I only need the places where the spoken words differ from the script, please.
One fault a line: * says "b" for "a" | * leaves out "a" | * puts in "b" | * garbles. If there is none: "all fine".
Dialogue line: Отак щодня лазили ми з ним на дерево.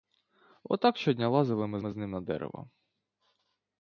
* puts in "ми"